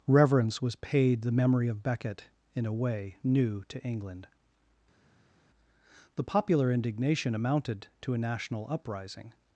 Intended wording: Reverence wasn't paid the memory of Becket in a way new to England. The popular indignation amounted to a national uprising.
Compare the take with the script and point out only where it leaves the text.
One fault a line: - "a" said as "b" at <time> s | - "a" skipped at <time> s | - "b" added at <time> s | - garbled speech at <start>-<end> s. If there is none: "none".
- "wasn't" said as "was" at 0.6 s